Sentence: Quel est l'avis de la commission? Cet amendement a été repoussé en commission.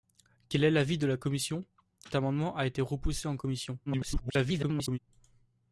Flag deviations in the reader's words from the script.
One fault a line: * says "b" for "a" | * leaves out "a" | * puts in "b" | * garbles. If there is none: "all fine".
* leaves out "Cet"
* garbles